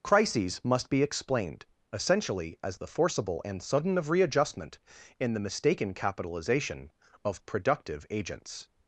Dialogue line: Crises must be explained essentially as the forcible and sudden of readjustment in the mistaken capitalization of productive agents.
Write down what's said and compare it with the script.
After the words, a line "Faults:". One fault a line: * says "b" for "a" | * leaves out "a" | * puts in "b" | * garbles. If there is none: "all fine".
Crises must be explained essentially as the forcible and sudden of readjustment in the mistaken capitalization of productive agents.
Faults:
all fine